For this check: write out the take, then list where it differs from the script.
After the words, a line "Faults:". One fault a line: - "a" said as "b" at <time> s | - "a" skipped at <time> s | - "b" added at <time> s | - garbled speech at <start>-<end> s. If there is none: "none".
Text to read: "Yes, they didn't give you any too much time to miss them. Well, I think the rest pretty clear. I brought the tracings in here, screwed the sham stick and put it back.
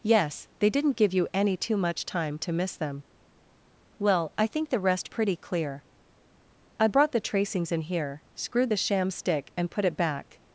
"Yes, they didn't give you any too much time to miss them. Well, I think the rest pretty clear. I brought the tracings in here, screwed the sham stick and put it back.
Faults:
none